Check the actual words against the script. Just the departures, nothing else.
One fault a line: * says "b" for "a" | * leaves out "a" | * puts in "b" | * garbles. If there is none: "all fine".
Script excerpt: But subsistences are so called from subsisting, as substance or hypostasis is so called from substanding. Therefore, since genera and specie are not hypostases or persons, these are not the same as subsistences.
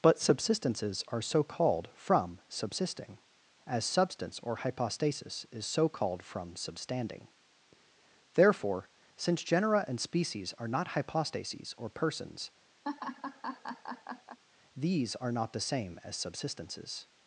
* says "species" for "specie"